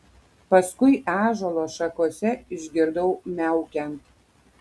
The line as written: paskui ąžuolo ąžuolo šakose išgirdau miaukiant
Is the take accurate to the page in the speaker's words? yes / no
no